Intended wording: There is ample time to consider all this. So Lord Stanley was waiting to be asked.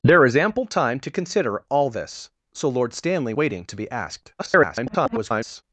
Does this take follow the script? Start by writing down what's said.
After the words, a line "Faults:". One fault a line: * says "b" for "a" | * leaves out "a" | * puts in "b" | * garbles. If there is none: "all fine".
There is ample time to consider all this. So Lord Stanley waiting to be asked. [garbled]
Faults:
* leaves out "was"
* garbles